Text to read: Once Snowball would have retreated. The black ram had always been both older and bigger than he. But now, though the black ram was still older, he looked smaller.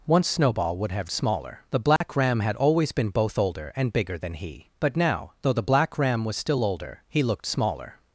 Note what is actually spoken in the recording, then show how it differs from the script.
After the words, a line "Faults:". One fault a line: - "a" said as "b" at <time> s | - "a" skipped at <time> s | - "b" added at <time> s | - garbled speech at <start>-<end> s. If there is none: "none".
Once Snowball would have smaller. The black ram had always been both older and bigger than he. But now, though the black ram was still older, he looked smaller.
Faults:
- "retreated" said as "smaller" at 1.1 s